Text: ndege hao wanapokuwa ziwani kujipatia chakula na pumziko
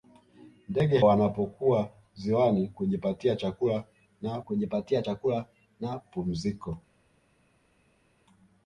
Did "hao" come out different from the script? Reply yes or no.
yes